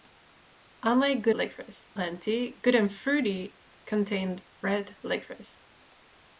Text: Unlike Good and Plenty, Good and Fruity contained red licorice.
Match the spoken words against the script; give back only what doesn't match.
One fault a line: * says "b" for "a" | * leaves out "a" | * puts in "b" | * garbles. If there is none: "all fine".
* says "licorice" for "and"